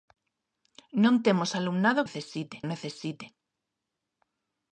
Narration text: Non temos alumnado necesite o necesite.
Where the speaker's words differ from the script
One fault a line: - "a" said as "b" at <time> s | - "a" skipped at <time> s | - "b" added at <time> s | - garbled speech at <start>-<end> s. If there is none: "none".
none